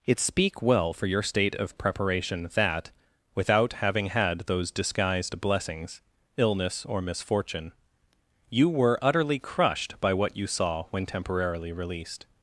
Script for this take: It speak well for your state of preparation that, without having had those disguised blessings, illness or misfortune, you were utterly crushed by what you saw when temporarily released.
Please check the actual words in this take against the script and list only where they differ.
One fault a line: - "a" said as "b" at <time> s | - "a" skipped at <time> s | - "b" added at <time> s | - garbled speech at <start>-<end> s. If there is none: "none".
none